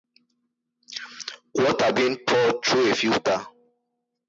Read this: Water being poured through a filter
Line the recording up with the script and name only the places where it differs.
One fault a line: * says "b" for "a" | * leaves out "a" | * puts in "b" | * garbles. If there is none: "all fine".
all fine